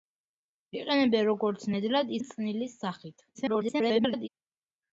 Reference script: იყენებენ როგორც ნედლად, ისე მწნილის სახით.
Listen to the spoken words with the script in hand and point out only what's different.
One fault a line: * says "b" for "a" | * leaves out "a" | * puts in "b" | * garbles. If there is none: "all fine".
* leaves out "ისე"
* garbles